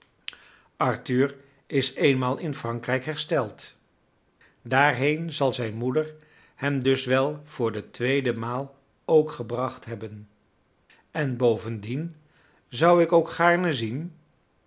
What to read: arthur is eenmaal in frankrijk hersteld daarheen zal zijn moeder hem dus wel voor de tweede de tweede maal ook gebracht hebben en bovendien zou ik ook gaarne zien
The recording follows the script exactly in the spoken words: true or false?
false